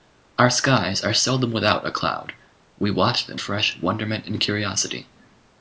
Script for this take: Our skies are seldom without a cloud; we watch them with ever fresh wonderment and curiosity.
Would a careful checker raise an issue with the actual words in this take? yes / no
yes